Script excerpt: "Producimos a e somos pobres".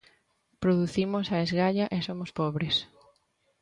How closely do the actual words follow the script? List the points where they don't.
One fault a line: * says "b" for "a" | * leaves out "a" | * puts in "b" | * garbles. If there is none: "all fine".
* puts in "esgalla"